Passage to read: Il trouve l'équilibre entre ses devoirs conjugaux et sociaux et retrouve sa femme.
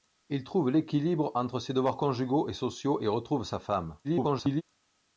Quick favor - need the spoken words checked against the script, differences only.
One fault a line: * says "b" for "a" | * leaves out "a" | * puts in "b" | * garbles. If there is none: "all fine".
* garbles